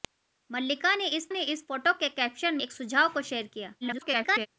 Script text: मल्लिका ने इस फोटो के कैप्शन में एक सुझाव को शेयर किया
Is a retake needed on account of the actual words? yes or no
yes